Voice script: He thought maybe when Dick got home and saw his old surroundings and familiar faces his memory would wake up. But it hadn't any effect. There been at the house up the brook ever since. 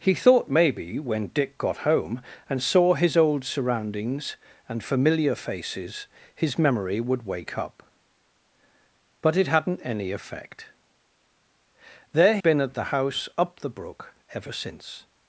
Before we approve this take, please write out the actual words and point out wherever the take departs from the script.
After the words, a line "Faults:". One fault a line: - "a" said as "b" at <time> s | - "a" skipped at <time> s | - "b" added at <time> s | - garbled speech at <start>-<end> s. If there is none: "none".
He thought maybe when Dick got home and saw his old surroundings and familiar faces his memory would wake up. But it hadn't any effect. There been at the house up the brook ever since.
Faults:
none